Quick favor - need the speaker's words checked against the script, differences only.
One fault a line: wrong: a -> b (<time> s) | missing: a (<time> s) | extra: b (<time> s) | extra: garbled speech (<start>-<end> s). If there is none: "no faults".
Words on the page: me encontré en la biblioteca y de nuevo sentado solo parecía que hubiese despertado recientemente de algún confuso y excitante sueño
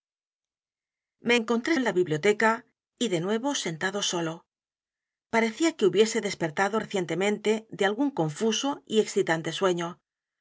no faults